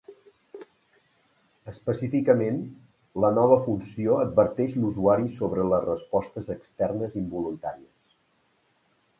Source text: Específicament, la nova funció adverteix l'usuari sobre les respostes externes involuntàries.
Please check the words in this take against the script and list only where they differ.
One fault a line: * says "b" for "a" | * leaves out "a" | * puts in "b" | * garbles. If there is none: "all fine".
all fine